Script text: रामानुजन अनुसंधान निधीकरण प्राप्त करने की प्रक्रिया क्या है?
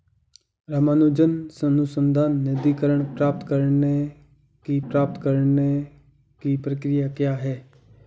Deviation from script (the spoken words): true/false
true